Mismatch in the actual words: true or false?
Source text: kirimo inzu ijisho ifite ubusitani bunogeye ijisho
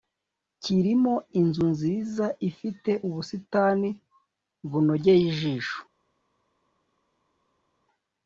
true